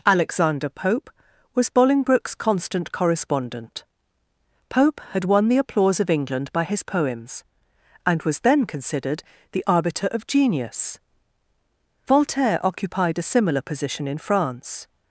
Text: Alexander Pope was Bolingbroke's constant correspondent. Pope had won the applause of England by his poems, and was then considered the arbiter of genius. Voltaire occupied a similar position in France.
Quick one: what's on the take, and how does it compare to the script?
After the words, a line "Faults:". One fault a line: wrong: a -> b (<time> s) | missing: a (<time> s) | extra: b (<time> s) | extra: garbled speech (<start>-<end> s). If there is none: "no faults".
Alexander Pope was Bolingbroke's constant correspondent. Pope had won the applause of England by his poems, and was then considered the arbiter of genius. Voltaire occupied a similar position in France.
Faults:
no faults